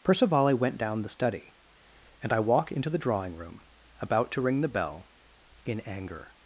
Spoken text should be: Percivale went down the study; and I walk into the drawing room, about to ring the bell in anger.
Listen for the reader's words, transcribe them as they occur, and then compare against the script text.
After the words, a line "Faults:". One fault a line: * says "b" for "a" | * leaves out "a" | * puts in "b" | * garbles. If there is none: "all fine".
Percivale went down the study; and I walk into the drawing room, about to ring the bell in anger.
Faults:
all fine